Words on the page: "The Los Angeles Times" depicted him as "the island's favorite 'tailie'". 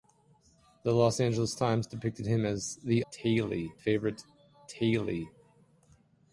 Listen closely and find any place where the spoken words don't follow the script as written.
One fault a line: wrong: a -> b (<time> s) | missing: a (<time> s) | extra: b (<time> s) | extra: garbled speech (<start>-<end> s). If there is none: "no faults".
wrong: island's -> tailie (3.1 s)